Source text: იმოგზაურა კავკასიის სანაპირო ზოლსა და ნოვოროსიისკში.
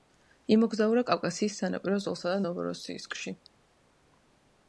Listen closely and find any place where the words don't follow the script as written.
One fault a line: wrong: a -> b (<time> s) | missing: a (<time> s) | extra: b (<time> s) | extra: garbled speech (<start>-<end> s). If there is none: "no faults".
no faults